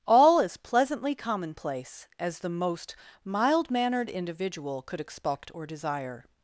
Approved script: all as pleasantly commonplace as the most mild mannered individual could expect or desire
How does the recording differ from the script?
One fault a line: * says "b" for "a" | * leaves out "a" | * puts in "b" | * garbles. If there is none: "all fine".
all fine